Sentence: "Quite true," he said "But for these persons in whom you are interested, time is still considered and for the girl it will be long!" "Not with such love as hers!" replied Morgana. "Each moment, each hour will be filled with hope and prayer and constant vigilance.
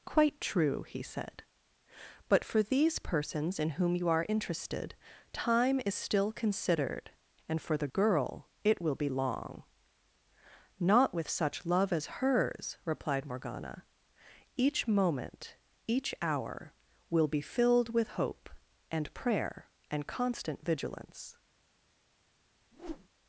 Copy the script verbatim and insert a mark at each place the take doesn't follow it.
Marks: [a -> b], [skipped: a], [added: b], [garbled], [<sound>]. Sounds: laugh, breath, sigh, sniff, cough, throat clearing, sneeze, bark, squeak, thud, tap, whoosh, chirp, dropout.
"Quite true," he said "But for these persons in whom you are interested, time is still considered and for the girl it will be long!" "Not with such love as hers!" replied Morgana. "Each moment, each hour will be filled with hope and prayer and constant vigilance. [whoosh]